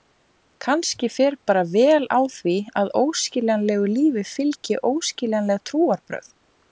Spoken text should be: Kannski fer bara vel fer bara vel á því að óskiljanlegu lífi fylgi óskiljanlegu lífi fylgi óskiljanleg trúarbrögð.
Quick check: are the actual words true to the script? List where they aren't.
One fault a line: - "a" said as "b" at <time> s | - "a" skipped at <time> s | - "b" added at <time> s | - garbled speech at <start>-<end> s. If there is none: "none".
- "fer bara vel" skipped at 2.1 s
- "óskiljanlegu lífi fylgi" skipped at 4.8 s